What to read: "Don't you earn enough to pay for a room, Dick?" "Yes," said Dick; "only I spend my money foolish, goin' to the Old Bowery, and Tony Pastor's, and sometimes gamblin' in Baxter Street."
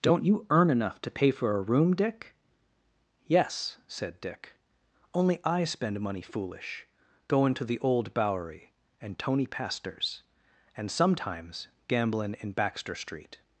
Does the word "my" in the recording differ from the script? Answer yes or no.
yes